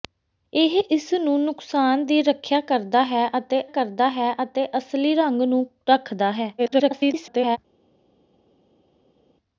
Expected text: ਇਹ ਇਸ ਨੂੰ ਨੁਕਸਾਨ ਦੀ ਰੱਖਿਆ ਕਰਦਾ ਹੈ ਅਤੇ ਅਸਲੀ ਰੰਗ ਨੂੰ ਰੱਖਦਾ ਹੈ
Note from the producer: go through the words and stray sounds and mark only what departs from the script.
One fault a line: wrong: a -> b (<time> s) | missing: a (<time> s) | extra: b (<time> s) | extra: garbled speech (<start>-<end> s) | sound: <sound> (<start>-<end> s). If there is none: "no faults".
extra: ਕਰਦਾ ਹੈ ਅਤੇ (3.7 s)
extra: garbled speech (6.6-7.6 s)